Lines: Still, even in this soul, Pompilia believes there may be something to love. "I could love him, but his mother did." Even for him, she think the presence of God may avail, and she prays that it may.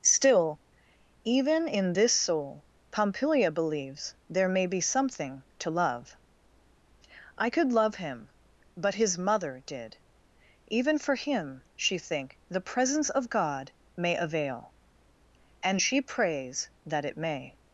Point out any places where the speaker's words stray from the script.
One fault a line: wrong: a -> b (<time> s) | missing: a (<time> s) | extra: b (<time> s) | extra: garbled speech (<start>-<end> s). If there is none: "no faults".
no faults